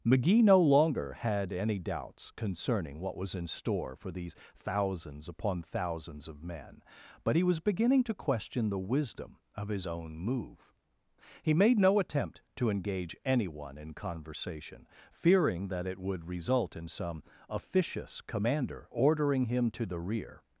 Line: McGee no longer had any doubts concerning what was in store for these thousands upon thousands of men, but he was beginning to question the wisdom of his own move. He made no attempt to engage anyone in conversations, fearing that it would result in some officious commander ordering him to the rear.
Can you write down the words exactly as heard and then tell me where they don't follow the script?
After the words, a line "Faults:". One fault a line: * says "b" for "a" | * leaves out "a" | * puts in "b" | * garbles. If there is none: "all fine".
McGee no longer had any doubts concerning what was in store for these thousands upon thousands of men, but he was beginning to question the wisdom of his own move. He made no attempt to engage anyone in conversation, fearing that it would result in some officious commander ordering him to the rear.
Faults:
* says "conversation" for "conversations"